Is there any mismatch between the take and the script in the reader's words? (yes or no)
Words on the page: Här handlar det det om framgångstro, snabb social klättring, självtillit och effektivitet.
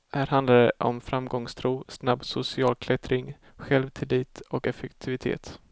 yes